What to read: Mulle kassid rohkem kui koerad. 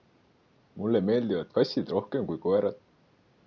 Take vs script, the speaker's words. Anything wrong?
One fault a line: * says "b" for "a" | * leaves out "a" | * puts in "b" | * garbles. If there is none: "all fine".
* puts in "meeldivad"